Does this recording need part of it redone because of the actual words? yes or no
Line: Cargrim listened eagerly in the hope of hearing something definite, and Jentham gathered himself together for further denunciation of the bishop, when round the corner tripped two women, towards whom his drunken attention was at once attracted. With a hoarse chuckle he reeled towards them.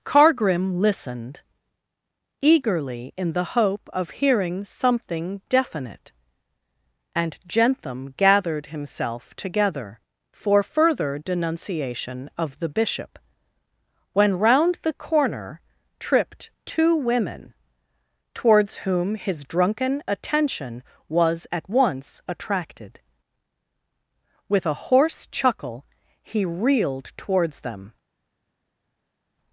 no